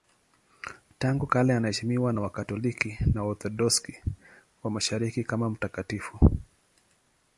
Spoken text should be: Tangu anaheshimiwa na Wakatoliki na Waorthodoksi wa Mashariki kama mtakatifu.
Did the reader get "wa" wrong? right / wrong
right